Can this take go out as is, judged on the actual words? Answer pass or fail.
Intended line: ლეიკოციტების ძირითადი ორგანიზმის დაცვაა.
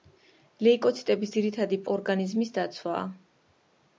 pass